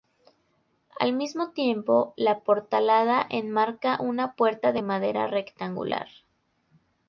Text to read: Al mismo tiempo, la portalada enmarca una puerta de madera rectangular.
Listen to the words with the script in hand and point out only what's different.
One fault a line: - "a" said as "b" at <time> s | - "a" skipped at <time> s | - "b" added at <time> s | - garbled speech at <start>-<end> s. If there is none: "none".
none